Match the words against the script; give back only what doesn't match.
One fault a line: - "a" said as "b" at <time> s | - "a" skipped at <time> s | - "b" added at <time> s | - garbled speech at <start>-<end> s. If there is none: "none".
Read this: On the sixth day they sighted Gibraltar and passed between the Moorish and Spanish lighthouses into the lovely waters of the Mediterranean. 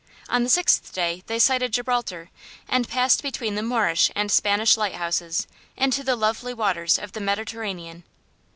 none